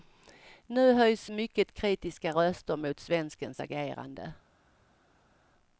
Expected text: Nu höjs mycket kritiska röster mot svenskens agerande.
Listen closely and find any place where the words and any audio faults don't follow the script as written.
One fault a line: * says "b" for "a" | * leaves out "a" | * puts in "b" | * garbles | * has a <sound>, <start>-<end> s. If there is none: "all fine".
all fine